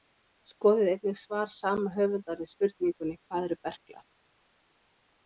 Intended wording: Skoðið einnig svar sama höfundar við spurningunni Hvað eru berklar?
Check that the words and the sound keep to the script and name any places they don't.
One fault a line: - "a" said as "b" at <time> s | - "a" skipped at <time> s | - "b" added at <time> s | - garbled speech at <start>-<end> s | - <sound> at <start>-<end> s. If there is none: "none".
none